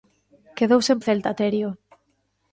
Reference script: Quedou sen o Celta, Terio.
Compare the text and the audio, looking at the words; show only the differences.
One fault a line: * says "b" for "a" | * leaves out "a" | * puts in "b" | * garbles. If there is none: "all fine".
all fine